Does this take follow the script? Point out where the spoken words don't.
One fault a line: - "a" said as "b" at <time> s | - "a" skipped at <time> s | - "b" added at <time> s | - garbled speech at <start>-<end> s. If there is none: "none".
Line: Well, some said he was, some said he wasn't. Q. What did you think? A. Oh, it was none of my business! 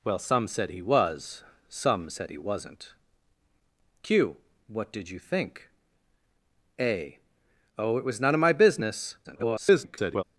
- garbled speech at 9.2-10.2 s